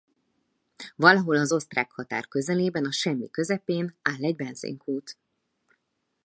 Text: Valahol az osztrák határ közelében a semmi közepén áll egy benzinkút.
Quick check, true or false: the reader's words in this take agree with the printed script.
true